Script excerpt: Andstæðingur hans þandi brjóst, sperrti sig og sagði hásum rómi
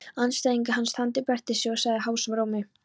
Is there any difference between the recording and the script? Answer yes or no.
yes